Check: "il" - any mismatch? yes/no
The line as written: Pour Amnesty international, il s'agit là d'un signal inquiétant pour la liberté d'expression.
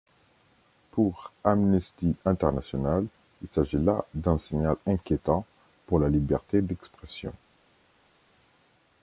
no